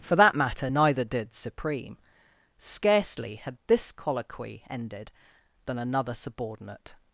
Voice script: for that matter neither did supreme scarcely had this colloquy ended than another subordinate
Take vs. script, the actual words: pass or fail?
pass